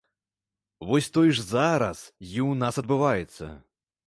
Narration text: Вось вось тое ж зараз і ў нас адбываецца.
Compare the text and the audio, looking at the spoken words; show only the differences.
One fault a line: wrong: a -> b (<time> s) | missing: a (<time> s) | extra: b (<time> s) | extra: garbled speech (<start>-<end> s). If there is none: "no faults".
missing: вось (1.1 s)